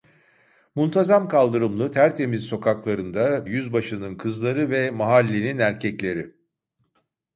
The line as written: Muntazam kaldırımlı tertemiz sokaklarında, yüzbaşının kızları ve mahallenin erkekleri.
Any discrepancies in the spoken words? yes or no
no